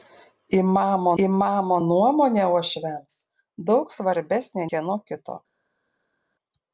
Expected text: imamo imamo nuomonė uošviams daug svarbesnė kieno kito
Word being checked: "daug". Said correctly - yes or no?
yes